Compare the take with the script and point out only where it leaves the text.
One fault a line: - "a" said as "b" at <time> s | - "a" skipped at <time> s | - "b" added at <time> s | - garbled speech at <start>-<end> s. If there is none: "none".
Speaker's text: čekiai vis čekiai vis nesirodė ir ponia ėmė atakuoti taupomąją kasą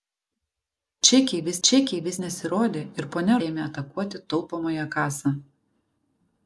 none